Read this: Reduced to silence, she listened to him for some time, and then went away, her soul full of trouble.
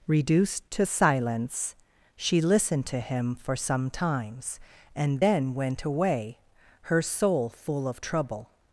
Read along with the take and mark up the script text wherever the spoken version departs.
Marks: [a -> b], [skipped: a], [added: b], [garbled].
Reduced to silence, she listened to him for some [time, -> times] and then went away, her soul full of trouble.